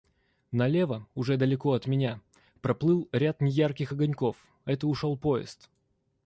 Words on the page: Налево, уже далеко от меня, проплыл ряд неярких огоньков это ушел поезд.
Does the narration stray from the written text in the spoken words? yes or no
no